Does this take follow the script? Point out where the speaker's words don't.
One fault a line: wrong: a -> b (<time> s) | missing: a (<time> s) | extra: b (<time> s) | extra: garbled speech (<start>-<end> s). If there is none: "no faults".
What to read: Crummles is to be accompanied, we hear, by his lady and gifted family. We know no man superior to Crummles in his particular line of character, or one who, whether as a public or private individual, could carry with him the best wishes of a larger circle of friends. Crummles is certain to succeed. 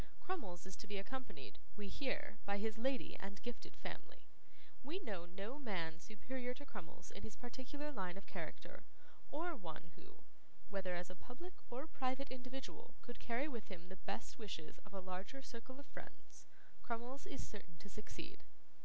no faults